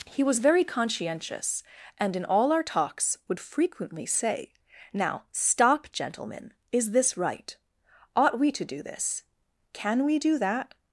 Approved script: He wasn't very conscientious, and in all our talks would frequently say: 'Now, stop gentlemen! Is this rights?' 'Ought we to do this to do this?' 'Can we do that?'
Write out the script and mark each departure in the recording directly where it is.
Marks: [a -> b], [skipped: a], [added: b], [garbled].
He [wasn't -> was] very conscientious, and in all our talks would frequently say: 'Now, stop gentlemen! Is this [rights?' -> right] 'Ought we to do this [skipped: to do this?'] 'Can we do that?'